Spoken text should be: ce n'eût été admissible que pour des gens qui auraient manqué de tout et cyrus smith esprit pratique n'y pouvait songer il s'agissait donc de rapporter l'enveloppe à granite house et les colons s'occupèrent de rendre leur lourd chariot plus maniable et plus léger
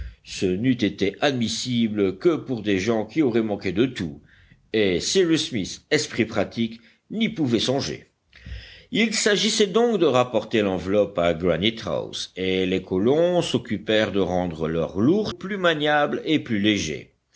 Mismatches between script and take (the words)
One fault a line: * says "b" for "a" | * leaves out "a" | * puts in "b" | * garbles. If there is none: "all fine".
* leaves out "chariot"